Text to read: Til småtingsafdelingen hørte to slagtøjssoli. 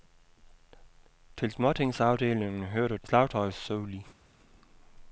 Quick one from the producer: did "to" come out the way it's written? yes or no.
no